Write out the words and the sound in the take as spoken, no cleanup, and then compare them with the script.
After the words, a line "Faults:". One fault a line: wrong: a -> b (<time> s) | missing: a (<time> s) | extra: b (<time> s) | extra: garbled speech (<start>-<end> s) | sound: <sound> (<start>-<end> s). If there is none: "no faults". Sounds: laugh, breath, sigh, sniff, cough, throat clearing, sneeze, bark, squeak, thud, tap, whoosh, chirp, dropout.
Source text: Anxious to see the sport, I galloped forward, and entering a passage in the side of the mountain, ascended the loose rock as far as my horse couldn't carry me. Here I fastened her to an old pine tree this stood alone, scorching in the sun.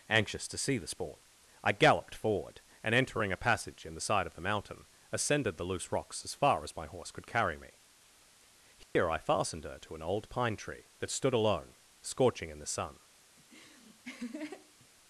Anxious to see the sport, I galloped forward, and entering a passage in the side of the mountain, ascended the loose rocks as far as my horse could carry me. Here I fastened her to an old pine tree that stood alone, scorching in the sun.
Faults:
wrong: rock -> rocks (5.9 s)
wrong: couldn't -> could (7.1 s)
sound: dropout (8.8-9.0 s)
wrong: this -> that (11.0 s)
sound: laugh (13.4-14.9 s)